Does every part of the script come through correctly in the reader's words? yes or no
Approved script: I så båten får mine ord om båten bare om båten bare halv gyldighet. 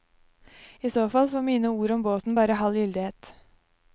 no